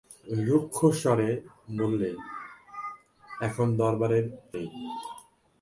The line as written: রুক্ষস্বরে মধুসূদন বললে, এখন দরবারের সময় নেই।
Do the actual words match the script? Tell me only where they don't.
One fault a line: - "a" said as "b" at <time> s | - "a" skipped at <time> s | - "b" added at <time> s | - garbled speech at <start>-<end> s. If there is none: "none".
- "মধুসূদন" skipped at 1.3 s
- "সময়" skipped at 4.2 s